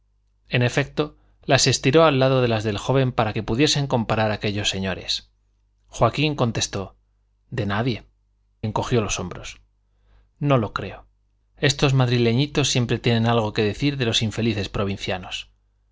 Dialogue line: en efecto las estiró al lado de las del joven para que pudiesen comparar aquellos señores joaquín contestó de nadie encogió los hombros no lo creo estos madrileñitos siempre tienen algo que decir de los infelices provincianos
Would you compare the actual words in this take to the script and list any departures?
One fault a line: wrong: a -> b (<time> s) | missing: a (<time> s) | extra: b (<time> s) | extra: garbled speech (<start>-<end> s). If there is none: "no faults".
no faults